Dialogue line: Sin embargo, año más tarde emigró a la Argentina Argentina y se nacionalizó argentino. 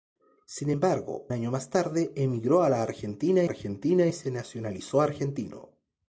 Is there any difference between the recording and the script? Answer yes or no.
no